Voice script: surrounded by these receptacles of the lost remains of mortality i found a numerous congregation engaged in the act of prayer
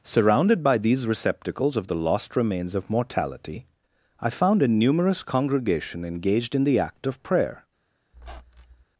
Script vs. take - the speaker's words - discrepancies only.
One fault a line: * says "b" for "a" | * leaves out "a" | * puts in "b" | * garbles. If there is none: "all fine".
all fine